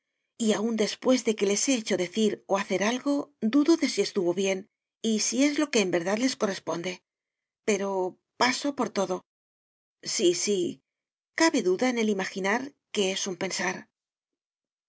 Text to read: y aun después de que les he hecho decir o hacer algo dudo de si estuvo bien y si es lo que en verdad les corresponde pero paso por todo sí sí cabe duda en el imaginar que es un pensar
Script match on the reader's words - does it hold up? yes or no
yes